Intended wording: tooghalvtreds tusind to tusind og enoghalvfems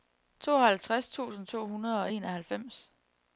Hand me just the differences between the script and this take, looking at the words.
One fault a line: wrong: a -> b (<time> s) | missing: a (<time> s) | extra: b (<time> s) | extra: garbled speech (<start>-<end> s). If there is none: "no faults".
wrong: tusind -> hundrede (1.7 s)